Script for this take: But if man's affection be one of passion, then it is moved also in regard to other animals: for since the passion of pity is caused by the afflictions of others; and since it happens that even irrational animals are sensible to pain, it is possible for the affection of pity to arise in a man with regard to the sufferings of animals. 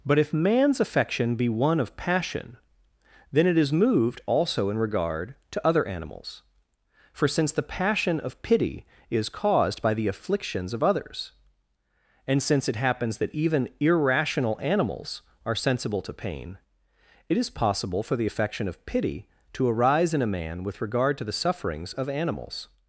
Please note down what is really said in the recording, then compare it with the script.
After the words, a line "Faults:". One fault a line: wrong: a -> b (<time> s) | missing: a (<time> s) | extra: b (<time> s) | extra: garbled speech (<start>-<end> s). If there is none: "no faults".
But if man's affection be one of passion, then it is moved also in regard to other animals: for since the passion of pity is caused by the afflictions of others; and since it happens that even irrational animals are sensible to pain, it is possible for the affection of pity to arise in a man with regard to the sufferings of animals.
Faults:
no faults